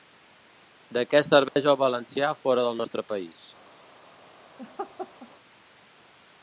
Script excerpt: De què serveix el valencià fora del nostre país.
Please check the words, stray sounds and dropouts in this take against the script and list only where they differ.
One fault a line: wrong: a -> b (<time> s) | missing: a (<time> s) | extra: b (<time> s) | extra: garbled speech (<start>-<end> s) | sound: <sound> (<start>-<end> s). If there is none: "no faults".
sound: dropout (1.5-1.6 s)
sound: laugh (4.6-5.3 s)